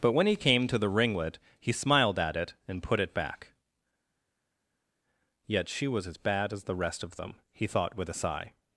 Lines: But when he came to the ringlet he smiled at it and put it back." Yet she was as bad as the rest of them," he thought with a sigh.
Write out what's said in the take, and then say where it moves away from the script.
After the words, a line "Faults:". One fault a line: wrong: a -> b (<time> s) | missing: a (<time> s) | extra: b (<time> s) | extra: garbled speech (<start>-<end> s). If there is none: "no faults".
But when he came to the ringlet he smiled at it and put it back." Yet she was as bad as the rest of them," he thought with a sigh.
Faults:
no faults